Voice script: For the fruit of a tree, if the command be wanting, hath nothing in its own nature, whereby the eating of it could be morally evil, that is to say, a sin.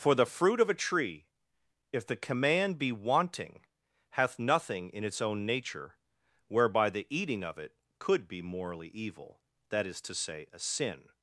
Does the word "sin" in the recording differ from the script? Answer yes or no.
no